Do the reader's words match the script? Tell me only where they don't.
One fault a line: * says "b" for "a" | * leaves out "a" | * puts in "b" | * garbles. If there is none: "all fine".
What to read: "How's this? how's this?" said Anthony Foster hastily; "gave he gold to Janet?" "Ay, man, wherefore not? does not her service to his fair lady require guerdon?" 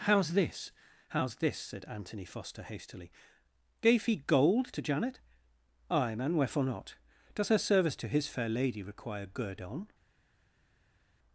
* leaves out "not"